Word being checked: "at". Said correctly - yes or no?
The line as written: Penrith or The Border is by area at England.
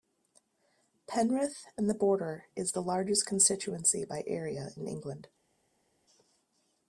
no